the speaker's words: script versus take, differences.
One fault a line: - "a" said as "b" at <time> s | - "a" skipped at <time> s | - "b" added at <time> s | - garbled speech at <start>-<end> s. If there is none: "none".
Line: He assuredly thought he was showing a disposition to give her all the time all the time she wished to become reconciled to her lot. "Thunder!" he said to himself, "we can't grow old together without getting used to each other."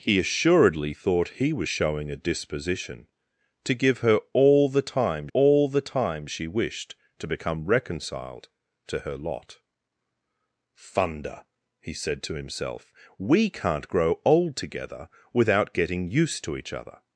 none